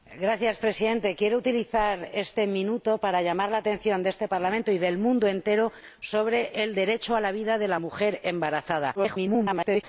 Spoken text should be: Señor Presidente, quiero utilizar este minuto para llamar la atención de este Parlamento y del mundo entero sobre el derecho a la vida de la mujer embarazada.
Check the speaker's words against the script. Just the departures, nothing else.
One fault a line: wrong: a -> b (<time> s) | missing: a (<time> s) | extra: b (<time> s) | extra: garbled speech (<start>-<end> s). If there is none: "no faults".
extra: garbled speech (9.0-9.8 s)